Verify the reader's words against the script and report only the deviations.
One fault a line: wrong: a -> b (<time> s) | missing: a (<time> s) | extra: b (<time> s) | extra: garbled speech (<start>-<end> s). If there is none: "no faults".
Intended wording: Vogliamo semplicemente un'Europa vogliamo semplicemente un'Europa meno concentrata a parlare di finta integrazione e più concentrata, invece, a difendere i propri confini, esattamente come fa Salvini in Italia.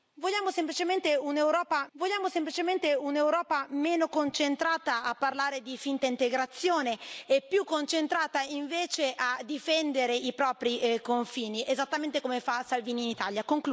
no faults